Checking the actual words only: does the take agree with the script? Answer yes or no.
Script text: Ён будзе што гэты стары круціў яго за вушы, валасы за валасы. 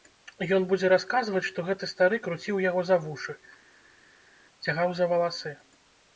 no